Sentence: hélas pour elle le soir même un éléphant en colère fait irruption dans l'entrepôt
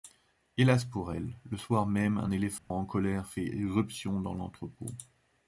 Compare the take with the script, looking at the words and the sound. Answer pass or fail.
fail